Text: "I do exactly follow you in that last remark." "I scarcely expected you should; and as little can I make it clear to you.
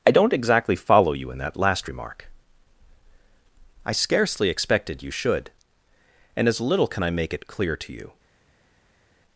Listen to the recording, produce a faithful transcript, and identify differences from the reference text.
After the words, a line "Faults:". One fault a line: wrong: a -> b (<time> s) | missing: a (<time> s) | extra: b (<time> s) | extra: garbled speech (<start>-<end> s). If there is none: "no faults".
"I don't exactly follow you in that last remark." "I scarcely expected you should; and as little can I make it clear to you.
Faults:
wrong: do -> don't (0.1 s)